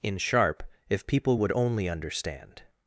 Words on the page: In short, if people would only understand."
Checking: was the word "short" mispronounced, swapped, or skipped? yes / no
yes